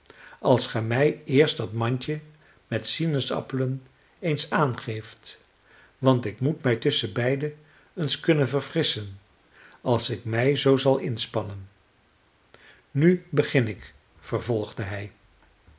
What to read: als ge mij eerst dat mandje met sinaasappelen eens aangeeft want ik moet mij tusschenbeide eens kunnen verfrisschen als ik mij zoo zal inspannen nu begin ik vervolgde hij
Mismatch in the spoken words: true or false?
false